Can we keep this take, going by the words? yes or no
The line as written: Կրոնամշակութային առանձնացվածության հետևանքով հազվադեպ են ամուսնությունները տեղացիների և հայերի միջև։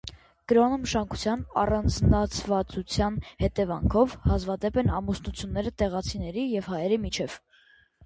yes